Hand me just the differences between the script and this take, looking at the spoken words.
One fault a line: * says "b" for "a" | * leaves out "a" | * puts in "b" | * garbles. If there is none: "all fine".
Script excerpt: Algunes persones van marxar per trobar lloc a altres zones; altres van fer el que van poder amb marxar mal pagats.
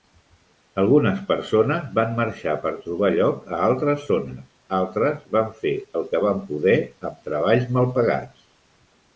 * says "treballs" for "marxar"